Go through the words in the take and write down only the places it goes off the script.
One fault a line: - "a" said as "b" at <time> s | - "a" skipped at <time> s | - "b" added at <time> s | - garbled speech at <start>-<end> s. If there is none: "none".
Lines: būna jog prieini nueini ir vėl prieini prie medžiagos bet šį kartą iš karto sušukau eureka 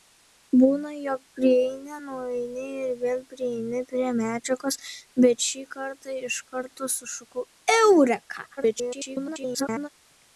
- garbled speech at 8.6-9.9 s